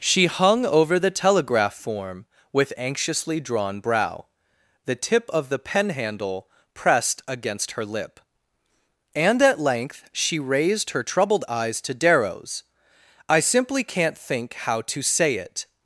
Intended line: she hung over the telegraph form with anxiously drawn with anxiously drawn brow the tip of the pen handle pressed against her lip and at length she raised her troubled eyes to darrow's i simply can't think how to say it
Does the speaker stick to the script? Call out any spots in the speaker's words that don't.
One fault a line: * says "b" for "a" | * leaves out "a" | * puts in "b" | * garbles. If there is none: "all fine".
* leaves out "with anxiously drawn"